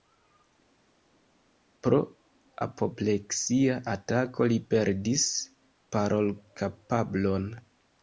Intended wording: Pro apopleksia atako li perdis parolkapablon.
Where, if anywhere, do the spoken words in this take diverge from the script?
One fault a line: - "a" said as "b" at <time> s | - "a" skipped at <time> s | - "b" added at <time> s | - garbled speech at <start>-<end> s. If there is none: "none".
none